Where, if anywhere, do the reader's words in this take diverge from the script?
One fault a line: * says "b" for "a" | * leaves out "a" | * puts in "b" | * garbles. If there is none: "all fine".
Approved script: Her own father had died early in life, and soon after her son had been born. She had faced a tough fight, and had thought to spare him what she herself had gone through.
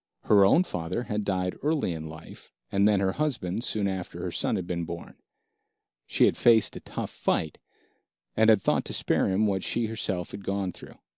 * puts in "then her husband"